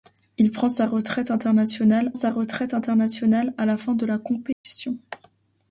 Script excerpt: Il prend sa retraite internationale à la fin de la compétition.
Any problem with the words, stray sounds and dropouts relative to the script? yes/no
yes